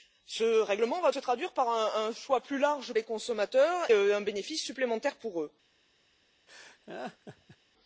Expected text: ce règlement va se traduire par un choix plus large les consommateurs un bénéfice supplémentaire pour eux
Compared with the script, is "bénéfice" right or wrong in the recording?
right